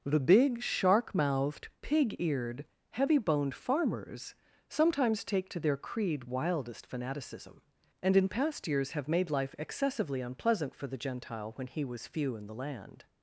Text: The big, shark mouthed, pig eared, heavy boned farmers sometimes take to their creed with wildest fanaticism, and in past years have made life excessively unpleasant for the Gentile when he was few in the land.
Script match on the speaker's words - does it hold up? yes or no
no